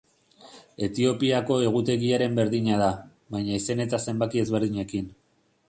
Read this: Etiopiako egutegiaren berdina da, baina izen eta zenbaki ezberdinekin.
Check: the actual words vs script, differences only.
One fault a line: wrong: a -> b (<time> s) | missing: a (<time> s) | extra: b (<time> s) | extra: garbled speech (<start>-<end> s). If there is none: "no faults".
no faults